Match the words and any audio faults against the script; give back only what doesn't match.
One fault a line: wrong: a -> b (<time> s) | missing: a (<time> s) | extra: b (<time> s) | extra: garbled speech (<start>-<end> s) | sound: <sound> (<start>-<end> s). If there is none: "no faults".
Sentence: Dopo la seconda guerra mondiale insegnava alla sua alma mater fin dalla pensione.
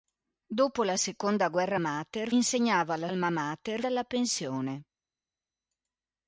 wrong: mondiale -> mater (1.8 s)
missing: sua (3.1 s)
missing: fin (3.8 s)